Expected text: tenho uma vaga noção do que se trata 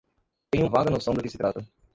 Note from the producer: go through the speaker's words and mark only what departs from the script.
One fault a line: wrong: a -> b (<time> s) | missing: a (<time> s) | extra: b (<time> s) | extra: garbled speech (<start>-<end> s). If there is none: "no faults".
missing: uma (0.7 s)